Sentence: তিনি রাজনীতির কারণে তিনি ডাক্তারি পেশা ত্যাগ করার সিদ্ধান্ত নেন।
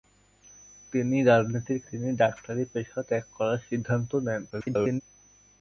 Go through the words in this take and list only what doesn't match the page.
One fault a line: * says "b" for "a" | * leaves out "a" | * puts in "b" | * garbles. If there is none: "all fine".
* leaves out "কারণে"
* garbles